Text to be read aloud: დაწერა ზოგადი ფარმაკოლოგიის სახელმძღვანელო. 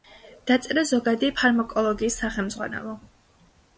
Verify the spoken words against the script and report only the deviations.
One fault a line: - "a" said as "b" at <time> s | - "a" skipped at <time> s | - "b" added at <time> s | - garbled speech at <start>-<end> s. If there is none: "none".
none